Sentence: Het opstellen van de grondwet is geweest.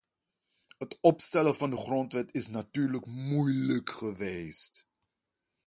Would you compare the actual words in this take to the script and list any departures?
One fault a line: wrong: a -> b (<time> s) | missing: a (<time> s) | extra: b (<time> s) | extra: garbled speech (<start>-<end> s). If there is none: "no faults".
extra: natuurlijk moeilijk (2.5 s)